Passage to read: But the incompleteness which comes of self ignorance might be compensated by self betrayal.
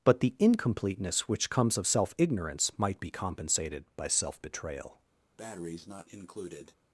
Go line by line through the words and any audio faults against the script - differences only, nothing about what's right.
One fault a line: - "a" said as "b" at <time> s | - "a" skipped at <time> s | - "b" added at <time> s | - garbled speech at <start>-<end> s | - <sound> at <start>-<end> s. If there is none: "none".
- breath at 5.4-6.8 s